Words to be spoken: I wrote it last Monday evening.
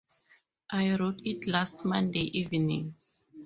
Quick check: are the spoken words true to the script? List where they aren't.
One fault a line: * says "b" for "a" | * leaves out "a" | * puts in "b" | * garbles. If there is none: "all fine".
all fine